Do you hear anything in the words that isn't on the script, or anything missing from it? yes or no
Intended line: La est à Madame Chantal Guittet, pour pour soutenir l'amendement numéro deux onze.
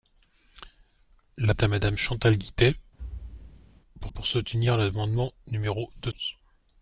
no